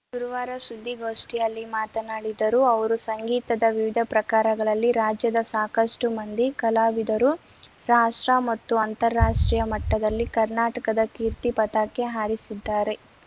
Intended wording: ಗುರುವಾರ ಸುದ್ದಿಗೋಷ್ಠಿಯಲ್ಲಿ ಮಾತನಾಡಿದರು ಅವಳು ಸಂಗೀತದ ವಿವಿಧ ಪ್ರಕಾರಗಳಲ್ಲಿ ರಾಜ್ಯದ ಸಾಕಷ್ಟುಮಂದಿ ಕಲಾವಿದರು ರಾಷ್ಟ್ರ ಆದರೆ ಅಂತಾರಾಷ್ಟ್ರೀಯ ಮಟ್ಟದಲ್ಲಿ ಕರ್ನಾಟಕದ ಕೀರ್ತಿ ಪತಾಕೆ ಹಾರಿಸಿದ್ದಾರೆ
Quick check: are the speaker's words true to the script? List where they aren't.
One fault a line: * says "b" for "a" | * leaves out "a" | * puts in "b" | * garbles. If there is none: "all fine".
* says "ಅವರು" for "ಅವಳು"
* says "ಮತ್ತು" for "ಆದರೆ"